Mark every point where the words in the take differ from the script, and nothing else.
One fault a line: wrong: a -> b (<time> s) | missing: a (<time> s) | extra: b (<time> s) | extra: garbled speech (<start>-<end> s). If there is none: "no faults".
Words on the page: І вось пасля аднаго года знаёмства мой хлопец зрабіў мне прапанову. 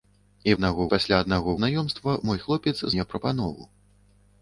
wrong: вось -> аднаго (0.6 s)
missing: года (1.6 s)
missing: зрабіў (2.8 s)